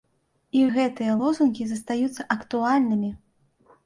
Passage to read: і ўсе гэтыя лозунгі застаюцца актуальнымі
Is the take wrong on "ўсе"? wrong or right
wrong